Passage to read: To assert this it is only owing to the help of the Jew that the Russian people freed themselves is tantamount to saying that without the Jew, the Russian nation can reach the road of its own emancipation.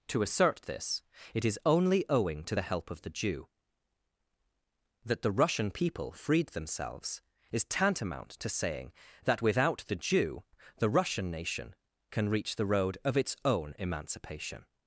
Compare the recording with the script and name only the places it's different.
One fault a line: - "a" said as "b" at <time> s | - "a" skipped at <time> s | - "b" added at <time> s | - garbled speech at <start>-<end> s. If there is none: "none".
none